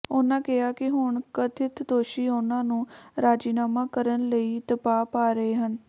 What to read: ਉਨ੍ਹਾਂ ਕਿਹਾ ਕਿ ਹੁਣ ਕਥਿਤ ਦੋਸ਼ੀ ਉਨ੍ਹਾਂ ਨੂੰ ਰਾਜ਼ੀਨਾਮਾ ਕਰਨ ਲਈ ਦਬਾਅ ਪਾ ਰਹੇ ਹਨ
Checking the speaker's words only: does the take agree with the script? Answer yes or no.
yes